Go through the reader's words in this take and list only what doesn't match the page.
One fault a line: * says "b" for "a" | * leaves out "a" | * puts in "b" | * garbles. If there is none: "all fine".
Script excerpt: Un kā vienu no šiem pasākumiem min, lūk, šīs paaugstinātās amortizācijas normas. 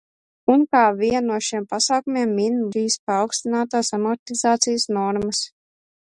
* leaves out "lūk"